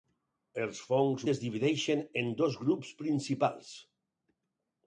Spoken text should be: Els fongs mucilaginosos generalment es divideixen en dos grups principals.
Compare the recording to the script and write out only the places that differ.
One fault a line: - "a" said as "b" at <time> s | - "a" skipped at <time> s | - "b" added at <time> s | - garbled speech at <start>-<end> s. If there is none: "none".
- "mucilaginosos generalment" skipped at 1.2 s